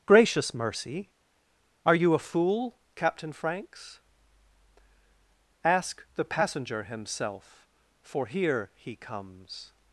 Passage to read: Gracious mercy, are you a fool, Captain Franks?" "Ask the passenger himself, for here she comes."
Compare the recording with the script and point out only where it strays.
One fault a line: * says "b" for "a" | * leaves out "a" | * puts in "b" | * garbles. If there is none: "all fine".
* says "he" for "she"